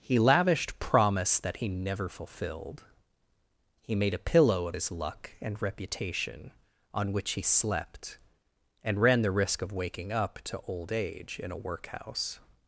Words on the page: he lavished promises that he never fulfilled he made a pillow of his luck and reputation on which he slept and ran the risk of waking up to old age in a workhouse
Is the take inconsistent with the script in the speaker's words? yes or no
yes